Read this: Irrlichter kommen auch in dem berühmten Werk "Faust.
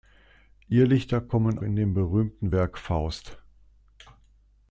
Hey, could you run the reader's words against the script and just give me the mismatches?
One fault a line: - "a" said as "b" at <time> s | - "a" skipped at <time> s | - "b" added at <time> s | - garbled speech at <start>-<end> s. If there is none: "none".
- "auch" skipped at 1.6 s